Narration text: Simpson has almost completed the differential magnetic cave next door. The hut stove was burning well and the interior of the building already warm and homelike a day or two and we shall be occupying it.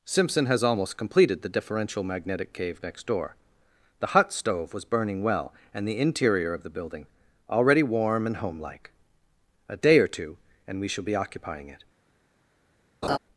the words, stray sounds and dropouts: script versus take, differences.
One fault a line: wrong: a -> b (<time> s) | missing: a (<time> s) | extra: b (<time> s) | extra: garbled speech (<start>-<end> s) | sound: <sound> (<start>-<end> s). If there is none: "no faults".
sound: laugh (13.0-13.2 s)